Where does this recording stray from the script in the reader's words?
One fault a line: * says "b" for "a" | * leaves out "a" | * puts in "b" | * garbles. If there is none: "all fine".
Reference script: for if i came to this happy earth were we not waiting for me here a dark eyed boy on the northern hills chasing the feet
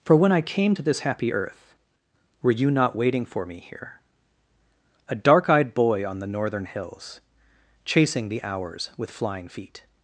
* says "when" for "if"
* says "you" for "we"
* puts in "hours with flying"